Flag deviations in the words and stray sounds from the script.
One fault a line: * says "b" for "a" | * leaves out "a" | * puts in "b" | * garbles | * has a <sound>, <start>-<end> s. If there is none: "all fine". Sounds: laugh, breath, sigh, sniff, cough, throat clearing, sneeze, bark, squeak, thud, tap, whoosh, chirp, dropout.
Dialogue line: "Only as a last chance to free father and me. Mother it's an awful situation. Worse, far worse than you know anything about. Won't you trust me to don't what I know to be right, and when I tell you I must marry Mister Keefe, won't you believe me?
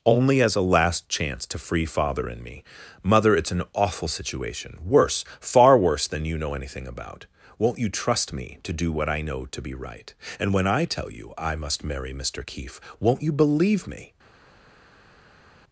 * says "do" for "don't"